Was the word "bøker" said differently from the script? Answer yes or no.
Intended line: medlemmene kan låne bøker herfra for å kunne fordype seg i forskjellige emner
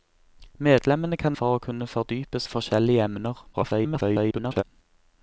yes